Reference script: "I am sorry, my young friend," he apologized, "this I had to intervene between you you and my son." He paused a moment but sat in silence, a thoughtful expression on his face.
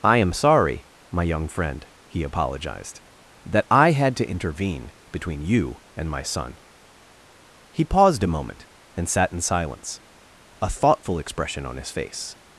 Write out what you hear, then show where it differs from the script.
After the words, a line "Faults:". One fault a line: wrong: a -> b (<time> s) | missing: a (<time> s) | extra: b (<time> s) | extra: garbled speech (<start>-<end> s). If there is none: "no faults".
"I am sorry, my young friend," he apologized, "that I had to intervene between you and my son." He paused a moment and sat in silence, a thoughtful expression on his face.
Faults:
wrong: this -> that (3.5 s)
missing: you (5.8 s)
wrong: but -> and (9.0 s)